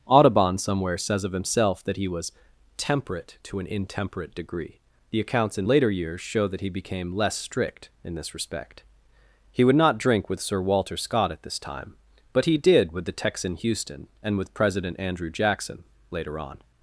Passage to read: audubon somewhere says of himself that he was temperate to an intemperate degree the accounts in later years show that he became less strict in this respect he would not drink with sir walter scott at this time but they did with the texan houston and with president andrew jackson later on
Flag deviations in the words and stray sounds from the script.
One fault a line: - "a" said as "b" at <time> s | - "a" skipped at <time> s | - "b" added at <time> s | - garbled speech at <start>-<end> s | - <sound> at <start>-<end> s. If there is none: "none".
- "they" said as "he" at 12.4 s